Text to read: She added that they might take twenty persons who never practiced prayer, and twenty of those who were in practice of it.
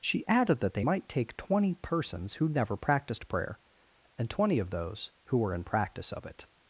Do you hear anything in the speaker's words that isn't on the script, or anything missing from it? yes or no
no